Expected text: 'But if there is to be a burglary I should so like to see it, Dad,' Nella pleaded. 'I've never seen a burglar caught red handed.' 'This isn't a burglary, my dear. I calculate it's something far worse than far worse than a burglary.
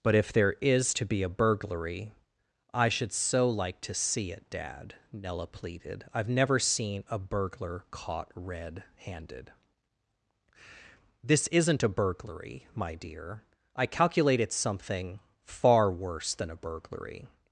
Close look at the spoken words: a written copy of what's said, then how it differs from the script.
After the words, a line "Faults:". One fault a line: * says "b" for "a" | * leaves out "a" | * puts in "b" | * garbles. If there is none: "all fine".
'But if there is to be a burglary I should so like to see it, Dad,' Nella pleaded. 'I've never seen a burglar caught red handed.' 'This isn't a burglary, my dear. I calculate it's something far worse than a burglary.
Faults:
* leaves out "far worse than"